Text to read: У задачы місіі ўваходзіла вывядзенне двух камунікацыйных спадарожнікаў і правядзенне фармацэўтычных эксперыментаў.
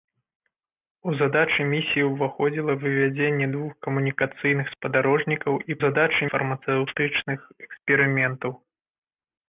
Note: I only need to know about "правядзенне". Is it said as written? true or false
false